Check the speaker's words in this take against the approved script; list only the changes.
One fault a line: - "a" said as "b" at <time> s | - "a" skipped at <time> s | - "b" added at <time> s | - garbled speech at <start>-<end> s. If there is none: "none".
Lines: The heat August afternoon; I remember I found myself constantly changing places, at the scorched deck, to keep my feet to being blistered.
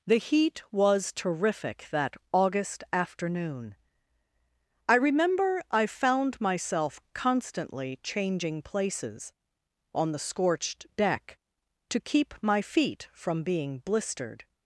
- "was terrific that" added at 0.7 s
- "at" said as "on" at 9.9 s
- "to" said as "from" at 13.1 s